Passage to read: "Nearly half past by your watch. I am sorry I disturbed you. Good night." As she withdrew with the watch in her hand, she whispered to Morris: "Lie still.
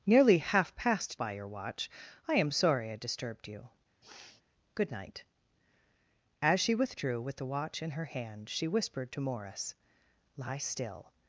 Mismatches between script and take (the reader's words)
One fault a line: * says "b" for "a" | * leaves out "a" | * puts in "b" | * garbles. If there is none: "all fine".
all fine